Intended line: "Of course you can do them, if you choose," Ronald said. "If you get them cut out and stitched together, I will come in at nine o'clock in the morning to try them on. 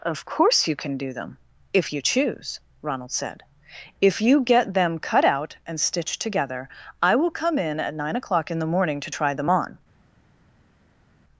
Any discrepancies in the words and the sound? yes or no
no